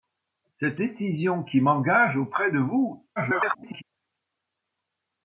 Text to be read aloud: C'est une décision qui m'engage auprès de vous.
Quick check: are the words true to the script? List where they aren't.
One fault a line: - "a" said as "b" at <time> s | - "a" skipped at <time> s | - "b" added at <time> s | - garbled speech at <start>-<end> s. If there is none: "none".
- "une" skipped at 0.8 s
- garbled speech at 3.2-3.8 s